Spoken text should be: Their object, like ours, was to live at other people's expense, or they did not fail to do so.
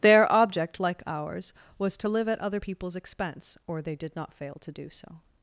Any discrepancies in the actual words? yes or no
no